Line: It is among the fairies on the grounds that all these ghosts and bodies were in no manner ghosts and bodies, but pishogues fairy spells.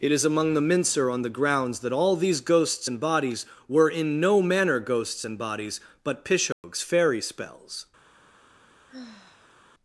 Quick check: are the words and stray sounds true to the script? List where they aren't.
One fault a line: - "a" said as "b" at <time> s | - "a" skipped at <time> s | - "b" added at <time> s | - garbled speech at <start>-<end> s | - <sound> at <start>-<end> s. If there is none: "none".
- "fairies" said as "mincer" at 0.6 s
- dropout at 6.5-6.6 s
- sigh at 8.9-9.6 s